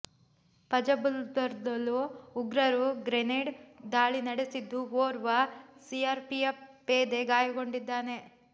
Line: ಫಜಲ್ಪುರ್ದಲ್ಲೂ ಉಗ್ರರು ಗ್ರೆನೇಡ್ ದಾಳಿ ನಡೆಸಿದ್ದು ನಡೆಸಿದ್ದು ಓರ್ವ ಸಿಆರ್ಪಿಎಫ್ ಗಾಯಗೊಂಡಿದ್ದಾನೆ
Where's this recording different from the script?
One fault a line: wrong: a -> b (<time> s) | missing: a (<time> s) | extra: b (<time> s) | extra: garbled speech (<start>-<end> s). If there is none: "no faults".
missing: ನಡೆಸಿದ್ದು (4.8 s)
extra: ಪೇದೆ (6.9 s)